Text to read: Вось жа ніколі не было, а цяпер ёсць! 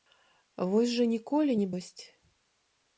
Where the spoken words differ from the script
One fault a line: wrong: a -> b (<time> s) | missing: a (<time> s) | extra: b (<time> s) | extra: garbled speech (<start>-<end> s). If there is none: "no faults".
missing: было а цяпер (1.7 s)